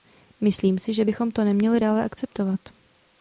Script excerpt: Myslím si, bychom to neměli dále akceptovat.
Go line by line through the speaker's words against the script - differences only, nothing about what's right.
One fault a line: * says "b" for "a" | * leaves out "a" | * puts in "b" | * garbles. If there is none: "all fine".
* puts in "že"